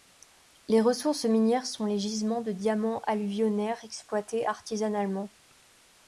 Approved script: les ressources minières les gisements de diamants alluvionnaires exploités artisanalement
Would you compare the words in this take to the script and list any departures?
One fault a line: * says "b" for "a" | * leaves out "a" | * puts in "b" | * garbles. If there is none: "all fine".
* puts in "sont"